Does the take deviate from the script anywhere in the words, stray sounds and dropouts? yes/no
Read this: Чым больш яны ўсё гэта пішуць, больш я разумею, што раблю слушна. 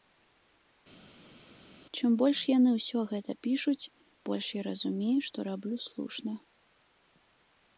no